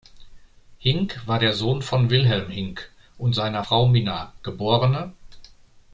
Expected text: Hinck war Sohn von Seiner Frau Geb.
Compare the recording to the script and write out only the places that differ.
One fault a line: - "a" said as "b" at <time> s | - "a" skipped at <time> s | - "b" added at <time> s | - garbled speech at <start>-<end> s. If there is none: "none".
- "der" added at 1.4 s
- "Wilhelm Hinck und" added at 2.1 s
- "Minna" added at 3.9 s